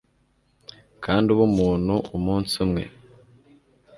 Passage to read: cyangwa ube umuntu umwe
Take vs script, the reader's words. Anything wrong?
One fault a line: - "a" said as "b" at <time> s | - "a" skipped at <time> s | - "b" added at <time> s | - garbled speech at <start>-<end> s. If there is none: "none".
- "cyangwa" said as "kandi" at 1.0 s
- "umunsi" added at 2.2 s